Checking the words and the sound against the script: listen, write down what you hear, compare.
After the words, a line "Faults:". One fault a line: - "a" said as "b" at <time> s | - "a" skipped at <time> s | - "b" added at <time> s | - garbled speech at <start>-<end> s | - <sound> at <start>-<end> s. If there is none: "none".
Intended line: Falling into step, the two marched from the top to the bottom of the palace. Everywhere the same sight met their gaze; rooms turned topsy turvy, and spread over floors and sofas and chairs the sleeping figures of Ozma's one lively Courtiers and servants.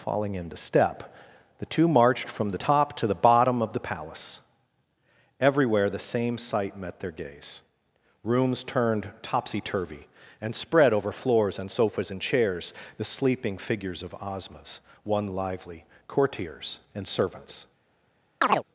Falling into step, the two marched from the top to the bottom of the palace. Everywhere the same sight met their gaze; rooms turned topsy turvy, and spread over floors and sofas and chairs the sleeping figures of Ozma's one lively Courtiers and servants.
Faults:
- chirp at 18.4-18.6 s